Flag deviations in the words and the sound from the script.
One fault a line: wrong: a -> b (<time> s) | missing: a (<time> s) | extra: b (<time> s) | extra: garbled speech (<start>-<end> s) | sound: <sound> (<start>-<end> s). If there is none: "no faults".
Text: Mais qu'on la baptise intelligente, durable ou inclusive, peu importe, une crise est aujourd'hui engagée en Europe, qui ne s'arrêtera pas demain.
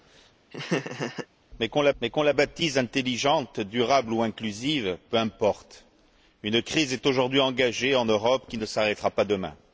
sound: laugh (0.5-1.3 s)
extra: mais qu'on la (2.0 s)